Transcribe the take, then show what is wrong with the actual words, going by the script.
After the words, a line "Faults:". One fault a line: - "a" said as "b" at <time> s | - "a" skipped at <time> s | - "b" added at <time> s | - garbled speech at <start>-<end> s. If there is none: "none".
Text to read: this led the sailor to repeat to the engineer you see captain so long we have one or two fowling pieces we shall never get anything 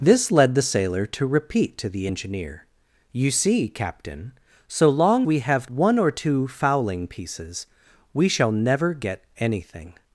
this led the sailor to repeat to the engineer you see captain so long we have one or two fowling pieces we shall never get anything
Faults:
none